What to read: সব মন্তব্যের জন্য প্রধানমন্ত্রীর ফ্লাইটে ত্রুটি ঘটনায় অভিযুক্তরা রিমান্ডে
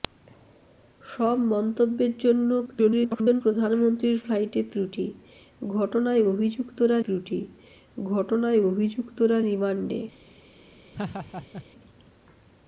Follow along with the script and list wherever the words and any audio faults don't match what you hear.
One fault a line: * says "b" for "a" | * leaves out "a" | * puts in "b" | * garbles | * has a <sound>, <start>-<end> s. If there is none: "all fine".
* garbles
* puts in "ত্রুটি ঘটনায় অভিযুক্তরা"
* has a laugh, 10.9-11.7 s